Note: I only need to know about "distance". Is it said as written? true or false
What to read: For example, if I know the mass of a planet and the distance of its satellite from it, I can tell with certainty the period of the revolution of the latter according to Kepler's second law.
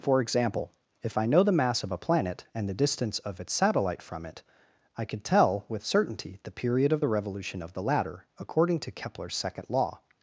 true